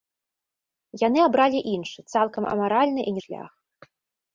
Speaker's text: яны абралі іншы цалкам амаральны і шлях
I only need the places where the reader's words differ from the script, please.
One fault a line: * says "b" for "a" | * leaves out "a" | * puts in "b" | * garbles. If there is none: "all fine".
all fine